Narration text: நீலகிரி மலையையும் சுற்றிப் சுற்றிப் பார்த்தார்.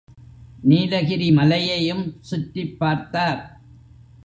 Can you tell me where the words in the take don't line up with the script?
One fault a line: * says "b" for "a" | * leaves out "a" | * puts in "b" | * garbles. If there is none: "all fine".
* leaves out "சுற்றிப்"